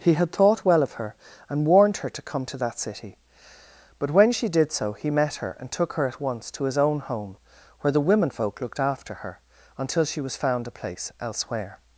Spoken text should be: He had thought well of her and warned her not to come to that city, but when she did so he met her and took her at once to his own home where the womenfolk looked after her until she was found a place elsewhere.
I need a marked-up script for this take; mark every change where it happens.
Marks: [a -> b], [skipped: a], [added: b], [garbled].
He had thought well of her and warned her [skipped: not] to come to that city, but when she did so he met her and took her at once to his own home where the womenfolk looked after her until she was found a place elsewhere.